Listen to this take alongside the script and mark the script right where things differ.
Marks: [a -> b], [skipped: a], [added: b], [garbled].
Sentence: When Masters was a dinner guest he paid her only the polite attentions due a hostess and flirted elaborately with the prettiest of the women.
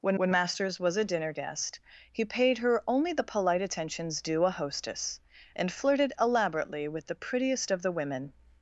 When [added: when] Masters was a dinner guest he paid her only the polite attentions due a hostess and flirted elaborately with the prettiest of the women.